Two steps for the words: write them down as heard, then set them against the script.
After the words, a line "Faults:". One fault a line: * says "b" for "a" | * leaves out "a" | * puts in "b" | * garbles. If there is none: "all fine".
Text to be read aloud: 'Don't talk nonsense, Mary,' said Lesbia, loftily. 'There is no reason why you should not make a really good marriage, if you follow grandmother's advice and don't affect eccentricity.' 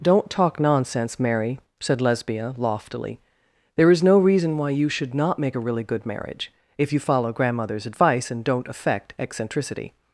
'Don't talk nonsense, Mary,' said Lesbia, loftily. 'There is no reason why you should not make a really good marriage, if you follow grandmother's advice and don't affect eccentricity.'
Faults:
all fine